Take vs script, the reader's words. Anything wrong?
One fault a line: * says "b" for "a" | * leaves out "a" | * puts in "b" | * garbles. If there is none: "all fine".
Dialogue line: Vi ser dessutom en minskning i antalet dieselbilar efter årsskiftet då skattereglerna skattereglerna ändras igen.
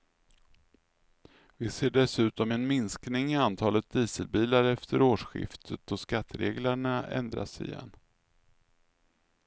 * leaves out "skattereglerna"